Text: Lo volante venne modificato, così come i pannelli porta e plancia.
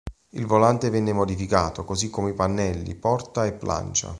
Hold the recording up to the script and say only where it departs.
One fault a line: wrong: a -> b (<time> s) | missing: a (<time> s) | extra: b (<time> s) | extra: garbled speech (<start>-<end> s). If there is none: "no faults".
wrong: Lo -> Il (0.3 s)